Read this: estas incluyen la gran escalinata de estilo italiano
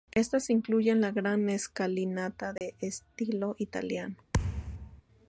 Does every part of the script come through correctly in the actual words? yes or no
yes